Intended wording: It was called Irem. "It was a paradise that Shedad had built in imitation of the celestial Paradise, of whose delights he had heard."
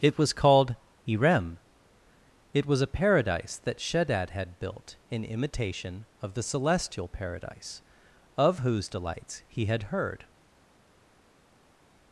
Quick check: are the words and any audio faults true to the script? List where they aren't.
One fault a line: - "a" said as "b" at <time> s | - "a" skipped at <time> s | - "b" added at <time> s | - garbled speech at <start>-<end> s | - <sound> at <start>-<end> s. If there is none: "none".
none